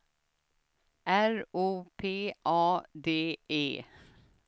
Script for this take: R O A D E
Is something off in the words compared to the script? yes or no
yes